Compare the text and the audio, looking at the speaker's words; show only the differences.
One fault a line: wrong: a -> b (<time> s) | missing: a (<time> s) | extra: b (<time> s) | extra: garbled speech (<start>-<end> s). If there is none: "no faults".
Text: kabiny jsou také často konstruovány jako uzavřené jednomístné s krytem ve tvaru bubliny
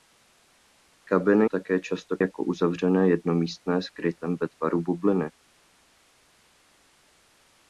missing: jsou (1.4 s)
missing: konstruovány (2.2 s)